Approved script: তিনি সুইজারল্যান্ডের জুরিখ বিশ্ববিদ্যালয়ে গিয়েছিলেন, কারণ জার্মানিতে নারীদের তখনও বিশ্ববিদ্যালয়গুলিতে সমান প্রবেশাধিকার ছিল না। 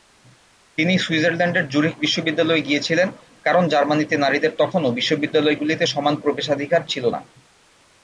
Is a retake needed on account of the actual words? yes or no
no